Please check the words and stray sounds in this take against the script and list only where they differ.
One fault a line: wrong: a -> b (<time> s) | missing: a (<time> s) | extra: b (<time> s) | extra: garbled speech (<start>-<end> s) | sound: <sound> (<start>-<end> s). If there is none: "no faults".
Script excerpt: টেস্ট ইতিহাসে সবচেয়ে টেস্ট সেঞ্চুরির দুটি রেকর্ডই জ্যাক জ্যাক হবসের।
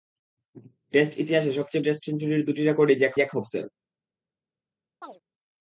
sound: chirp (5.0-5.2 s)